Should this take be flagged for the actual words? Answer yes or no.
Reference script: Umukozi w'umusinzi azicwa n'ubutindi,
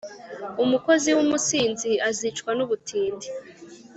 no